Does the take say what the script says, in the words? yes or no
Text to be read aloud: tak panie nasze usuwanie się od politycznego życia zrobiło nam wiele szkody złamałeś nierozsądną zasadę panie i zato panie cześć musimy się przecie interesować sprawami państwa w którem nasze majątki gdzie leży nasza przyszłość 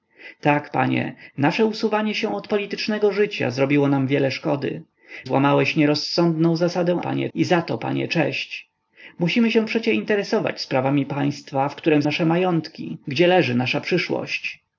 yes